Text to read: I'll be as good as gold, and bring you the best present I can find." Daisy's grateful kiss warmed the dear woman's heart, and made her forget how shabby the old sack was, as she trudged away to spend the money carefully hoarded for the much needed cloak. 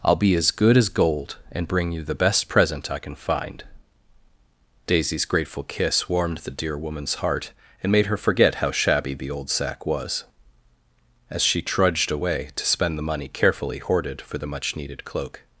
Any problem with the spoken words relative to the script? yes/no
no